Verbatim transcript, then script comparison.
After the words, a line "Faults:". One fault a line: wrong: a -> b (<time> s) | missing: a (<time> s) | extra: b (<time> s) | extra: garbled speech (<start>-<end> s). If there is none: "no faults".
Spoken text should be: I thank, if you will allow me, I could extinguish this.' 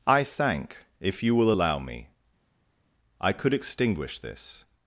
I thank, if you will allow me, I could extinguish this.'
Faults:
no faults